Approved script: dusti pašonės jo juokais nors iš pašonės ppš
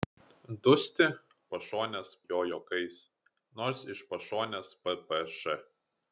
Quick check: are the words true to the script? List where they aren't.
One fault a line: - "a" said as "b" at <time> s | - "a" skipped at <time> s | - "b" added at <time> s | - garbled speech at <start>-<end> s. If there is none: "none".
none